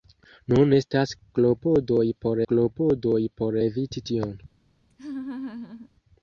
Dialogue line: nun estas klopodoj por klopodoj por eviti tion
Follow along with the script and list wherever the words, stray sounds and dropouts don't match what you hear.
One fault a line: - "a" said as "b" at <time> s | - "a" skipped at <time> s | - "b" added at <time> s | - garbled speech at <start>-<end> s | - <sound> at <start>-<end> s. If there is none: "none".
- laugh at 4.9-5.9 s